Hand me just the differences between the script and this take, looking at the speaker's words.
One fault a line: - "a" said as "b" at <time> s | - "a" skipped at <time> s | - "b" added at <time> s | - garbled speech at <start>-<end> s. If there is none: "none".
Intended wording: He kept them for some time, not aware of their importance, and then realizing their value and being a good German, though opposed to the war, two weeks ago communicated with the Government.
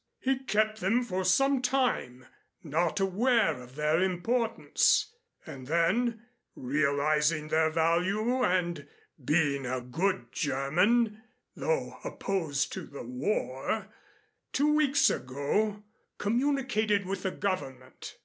none